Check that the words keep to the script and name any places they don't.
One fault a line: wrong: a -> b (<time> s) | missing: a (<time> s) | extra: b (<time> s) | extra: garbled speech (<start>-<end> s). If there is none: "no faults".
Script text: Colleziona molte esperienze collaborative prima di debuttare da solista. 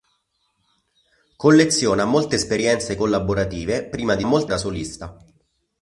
wrong: debuttare -> molte (4.2 s)